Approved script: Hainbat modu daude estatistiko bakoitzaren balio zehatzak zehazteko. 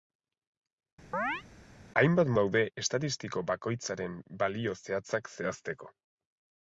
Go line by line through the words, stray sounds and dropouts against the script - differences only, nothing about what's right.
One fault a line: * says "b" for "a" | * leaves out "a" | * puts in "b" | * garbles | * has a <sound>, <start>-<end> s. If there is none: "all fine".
* has a chirp, 1.1-1.4 s
* leaves out "modu"